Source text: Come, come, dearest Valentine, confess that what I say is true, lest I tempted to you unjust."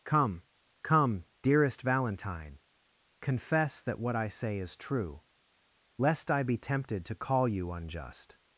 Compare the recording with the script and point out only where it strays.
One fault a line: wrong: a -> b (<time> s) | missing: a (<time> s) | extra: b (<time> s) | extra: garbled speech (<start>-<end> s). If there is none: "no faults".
extra: be (6.4 s)
extra: call (7.1 s)